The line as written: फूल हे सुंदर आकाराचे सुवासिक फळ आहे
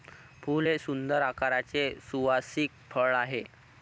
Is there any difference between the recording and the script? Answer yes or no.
no